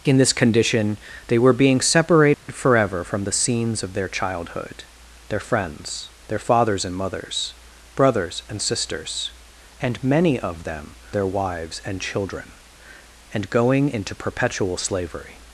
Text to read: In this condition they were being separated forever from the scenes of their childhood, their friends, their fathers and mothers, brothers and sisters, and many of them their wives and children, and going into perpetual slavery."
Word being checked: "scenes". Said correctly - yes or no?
yes